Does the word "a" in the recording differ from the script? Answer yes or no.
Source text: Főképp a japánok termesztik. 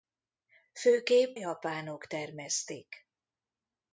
yes